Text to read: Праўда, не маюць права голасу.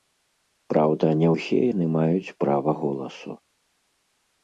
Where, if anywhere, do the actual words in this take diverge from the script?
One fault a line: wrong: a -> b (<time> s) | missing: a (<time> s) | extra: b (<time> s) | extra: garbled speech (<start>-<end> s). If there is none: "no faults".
extra: ўсе яны (1.3 s)